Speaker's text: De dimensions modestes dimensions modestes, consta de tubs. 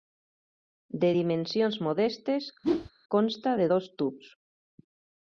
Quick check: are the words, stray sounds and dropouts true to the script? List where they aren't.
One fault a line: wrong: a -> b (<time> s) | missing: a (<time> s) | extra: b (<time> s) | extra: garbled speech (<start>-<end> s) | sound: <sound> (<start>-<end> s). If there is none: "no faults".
missing: dimensions modestes (2.5 s)
sound: whoosh (2.6-2.9 s)
extra: dos (3.7 s)